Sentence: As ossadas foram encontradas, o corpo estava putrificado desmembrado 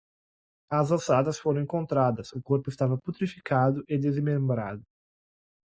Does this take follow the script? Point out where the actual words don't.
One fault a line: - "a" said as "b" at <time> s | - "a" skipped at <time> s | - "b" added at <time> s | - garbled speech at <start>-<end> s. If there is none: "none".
- "e" added at 3.9 s